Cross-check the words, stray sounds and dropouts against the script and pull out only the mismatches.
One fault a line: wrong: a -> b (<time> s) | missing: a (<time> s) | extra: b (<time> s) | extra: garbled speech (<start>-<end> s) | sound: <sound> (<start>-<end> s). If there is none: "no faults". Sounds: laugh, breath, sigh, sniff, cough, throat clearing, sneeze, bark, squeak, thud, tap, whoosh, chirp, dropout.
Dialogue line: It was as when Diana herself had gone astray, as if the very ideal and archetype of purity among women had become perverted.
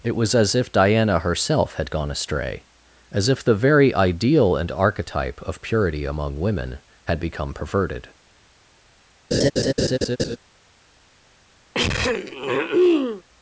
wrong: when -> if (0.6 s)
sound: laugh (9.3-10.4 s)
sound: throat clearing (11.7-13.2 s)